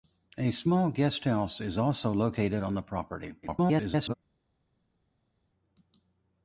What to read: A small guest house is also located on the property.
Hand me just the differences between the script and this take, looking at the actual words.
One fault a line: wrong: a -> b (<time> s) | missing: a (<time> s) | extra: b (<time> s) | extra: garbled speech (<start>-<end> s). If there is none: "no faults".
extra: garbled speech (3.4-4.1 s)